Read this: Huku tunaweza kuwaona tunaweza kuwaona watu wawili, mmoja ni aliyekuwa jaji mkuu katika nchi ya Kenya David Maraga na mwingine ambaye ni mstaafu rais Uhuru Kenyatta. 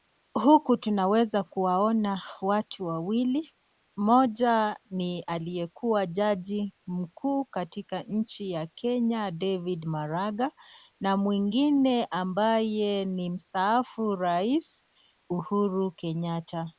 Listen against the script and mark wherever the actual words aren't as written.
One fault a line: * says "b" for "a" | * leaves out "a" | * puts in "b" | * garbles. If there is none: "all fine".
* leaves out "tunaweza kuwaona"